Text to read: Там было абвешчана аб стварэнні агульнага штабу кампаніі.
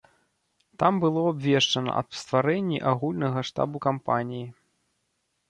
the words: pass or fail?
pass